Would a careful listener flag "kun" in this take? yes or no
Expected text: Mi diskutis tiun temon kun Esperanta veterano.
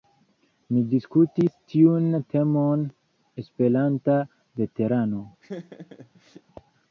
yes